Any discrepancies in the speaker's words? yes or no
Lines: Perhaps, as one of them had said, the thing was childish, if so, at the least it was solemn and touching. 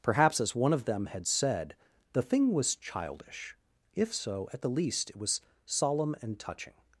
no